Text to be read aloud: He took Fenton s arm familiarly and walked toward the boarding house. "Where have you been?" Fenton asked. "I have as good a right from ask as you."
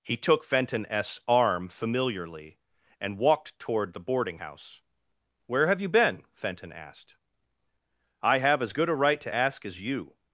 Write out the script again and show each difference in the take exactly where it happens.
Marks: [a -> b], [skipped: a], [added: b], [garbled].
He took Fenton s arm familiarly and walked toward the boarding house. "Where have you been?" Fenton asked. "I have as good a right [from -> to] ask as you."